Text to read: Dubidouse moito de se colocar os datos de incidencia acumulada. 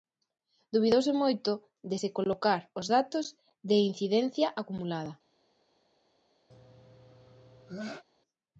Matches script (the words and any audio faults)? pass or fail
fail